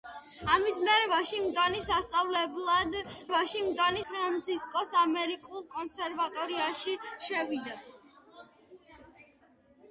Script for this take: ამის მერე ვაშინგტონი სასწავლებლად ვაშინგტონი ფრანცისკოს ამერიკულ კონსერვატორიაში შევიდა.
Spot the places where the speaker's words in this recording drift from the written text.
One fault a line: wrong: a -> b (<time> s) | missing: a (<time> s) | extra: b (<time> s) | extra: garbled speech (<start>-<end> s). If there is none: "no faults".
no faults